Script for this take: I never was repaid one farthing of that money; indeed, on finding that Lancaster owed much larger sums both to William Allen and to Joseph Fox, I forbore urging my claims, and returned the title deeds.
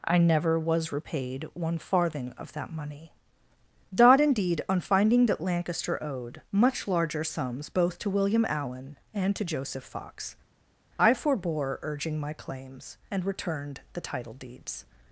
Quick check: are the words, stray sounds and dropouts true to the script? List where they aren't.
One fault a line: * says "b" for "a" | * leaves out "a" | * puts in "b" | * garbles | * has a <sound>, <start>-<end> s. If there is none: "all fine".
* puts in "dodd"